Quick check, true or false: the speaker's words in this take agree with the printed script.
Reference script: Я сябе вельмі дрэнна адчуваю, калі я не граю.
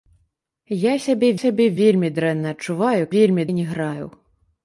false